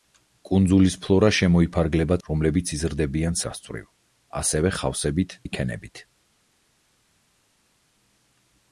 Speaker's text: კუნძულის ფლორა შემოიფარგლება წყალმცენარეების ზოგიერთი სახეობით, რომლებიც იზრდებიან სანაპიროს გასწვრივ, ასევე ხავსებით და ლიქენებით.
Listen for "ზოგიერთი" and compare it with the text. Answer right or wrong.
wrong